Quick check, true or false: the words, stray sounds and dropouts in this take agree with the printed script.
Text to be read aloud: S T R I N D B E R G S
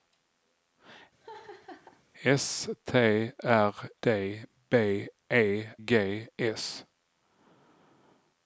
false